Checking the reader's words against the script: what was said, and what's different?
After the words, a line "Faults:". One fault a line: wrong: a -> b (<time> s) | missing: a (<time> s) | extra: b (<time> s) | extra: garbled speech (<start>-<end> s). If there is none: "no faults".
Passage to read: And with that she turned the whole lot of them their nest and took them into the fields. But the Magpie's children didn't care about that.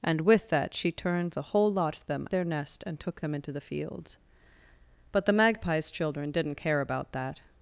And with that she turned the whole lot of them their nest and took them into the fields. But the Magpie's children didn't care about that.
Faults:
no faults